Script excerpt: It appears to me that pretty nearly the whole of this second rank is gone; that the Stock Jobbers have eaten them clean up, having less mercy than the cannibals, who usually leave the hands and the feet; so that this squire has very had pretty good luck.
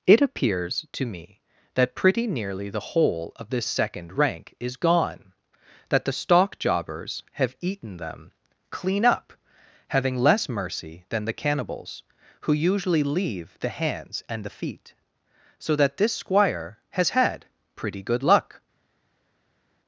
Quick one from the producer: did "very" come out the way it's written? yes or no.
no